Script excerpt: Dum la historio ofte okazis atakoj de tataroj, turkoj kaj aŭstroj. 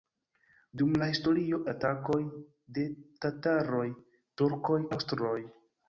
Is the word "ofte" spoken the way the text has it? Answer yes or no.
no